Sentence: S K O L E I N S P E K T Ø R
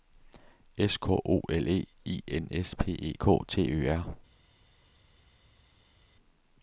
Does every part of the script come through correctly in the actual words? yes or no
yes